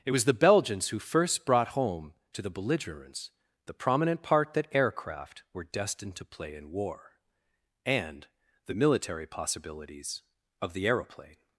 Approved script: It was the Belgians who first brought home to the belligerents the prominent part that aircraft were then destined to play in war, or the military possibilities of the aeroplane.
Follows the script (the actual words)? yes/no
no